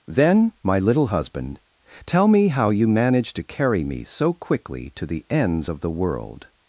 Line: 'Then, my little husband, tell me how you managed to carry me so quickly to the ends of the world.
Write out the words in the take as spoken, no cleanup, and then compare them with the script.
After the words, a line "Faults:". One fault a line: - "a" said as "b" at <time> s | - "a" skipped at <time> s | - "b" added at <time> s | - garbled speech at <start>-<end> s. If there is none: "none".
'Then, my little husband, tell me how you managed to carry me so quickly to the ends of the world.
Faults:
none